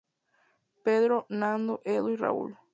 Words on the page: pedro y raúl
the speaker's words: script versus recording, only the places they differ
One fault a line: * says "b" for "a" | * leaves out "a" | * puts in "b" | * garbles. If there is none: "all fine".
* puts in "nando edu"